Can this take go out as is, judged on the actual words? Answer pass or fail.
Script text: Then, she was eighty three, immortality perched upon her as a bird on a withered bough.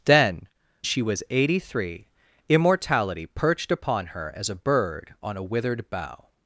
pass